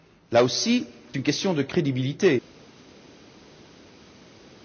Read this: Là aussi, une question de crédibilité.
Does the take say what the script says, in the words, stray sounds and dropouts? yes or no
yes